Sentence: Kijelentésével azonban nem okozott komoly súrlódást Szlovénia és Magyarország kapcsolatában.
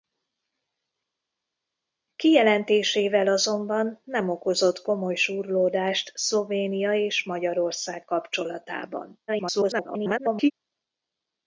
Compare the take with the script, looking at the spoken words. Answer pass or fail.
fail